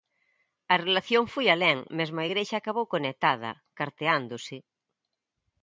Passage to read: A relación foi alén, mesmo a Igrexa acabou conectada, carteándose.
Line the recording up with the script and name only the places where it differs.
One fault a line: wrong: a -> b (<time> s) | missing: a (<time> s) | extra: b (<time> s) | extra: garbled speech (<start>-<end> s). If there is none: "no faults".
no faults